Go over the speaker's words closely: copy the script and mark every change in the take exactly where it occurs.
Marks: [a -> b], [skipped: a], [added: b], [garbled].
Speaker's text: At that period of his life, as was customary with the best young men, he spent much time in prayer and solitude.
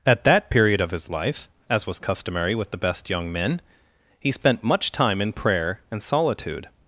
At that period of his life, as was customary with the best young men, he spent much time in prayer and solitude.